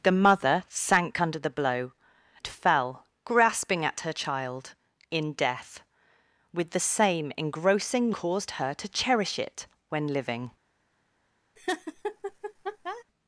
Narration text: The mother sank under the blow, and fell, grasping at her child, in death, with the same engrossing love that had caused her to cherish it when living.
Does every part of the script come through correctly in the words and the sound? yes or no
no